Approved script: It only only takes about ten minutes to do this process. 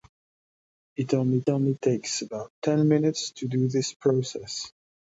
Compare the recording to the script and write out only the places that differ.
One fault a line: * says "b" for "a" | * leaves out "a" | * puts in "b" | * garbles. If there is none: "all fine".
all fine